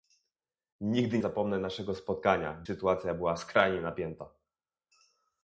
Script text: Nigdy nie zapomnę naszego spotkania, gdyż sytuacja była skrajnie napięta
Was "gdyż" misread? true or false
true